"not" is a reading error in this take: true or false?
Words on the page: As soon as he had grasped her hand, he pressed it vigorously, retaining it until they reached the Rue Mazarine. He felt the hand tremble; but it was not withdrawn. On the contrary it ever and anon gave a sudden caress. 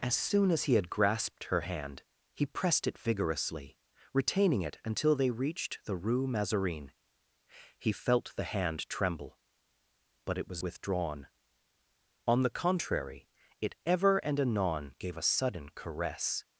true